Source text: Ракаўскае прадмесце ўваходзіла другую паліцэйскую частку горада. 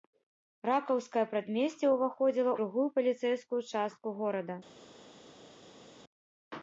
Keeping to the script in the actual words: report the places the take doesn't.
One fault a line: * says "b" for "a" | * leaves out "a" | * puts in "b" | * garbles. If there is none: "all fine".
all fine